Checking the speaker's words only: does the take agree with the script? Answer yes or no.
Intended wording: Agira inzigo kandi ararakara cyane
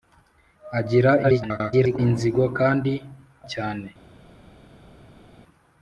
no